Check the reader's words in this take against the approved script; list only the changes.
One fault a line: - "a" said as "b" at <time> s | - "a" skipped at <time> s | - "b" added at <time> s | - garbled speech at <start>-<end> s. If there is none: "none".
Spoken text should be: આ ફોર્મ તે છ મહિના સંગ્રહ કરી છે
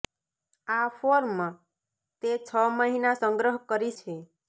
none